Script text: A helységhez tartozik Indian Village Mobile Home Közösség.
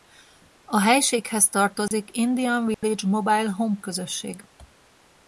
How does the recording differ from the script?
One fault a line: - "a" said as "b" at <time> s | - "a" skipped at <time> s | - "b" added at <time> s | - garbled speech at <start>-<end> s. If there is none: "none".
none